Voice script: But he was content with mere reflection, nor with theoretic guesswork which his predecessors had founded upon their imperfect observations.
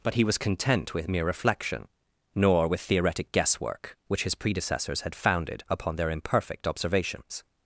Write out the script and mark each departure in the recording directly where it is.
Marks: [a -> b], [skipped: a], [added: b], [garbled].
But he was content with mere reflection, nor with theoretic guesswork which his predecessors had founded upon their imperfect observations.